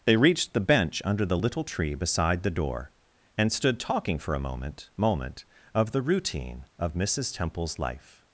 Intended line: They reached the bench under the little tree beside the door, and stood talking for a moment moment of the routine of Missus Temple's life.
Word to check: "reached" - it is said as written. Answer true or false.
true